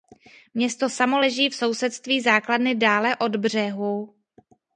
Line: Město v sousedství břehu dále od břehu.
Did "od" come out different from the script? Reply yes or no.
no